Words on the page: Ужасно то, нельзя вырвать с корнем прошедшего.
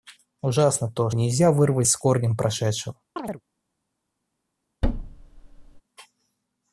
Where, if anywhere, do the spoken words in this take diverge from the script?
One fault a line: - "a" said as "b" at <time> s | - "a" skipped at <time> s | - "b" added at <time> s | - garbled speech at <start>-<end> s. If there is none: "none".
none